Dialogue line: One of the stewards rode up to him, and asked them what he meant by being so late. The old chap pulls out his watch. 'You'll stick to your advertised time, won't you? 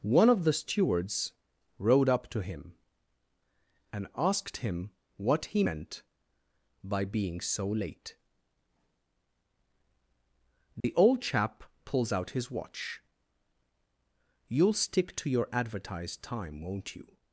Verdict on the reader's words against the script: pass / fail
fail